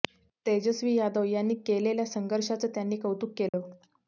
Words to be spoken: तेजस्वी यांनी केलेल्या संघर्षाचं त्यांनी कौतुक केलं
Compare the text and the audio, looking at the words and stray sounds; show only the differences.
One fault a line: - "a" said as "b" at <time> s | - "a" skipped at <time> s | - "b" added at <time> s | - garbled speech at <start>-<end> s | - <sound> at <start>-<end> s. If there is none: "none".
- "यादव" added at 0.9 s
- dropout at 3.5-3.5 s